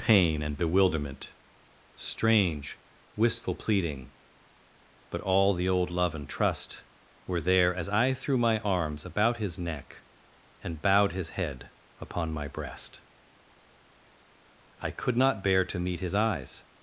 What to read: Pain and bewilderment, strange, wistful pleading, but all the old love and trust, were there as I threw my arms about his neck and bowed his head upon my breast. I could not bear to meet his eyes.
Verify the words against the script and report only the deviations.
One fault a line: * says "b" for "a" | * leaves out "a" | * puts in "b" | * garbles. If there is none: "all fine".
all fine